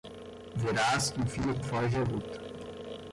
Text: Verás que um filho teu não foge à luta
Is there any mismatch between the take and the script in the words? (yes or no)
yes